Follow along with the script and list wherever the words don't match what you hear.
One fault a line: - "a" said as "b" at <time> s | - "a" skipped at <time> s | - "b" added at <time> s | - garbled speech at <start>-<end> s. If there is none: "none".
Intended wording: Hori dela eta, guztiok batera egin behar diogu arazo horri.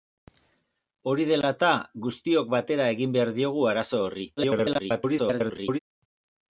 - garbled speech at 4.4-5.8 s